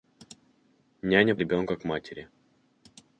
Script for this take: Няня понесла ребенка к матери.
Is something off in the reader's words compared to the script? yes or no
yes